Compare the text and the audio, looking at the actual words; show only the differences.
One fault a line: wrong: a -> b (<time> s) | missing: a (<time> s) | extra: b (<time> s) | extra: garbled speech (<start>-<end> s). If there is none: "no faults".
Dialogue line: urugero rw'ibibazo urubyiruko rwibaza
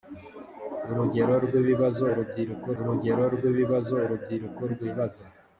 extra: urugero rw'ibibazo urubyiruko (2.8 s)